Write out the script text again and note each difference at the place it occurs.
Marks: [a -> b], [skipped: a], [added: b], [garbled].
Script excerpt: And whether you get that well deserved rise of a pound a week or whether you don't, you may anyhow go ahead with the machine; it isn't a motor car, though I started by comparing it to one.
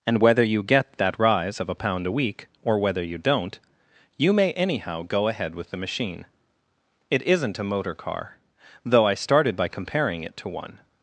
And whether you get that [skipped: well deserved] rise of a pound a week or whether you don't, you may anyhow go ahead with the machine; it isn't a motor car, though I started by comparing it to one.